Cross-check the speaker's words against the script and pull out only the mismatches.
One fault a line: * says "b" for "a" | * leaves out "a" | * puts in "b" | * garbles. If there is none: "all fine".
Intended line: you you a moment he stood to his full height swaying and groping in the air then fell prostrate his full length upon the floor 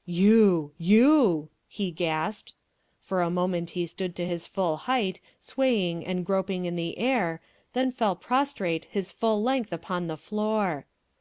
* puts in "he gasped for"